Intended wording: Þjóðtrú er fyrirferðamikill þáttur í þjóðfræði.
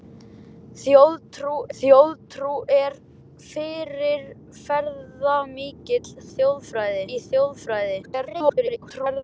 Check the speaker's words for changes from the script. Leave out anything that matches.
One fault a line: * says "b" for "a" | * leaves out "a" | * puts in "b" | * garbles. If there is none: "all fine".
* puts in "þjóðtrú"
* says "þjóðfræði" for "þáttur"
* garbles